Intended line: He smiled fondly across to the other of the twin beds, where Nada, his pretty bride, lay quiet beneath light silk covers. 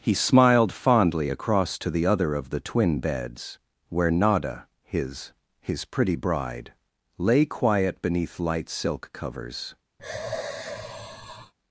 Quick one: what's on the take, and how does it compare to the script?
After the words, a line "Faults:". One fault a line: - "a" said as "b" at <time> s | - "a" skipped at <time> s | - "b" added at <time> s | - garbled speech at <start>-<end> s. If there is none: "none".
He smiled fondly across to the other of the twin beds, where Nada, his his pretty bride, lay quiet beneath light silk covers.
Faults:
- "his" added at 5.6 s